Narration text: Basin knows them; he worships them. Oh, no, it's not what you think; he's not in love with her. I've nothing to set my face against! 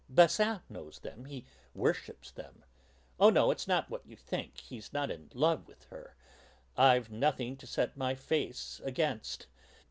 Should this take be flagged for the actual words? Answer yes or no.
no